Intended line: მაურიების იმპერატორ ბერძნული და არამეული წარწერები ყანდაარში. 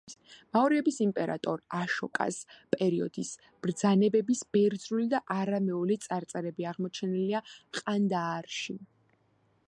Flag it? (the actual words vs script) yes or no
yes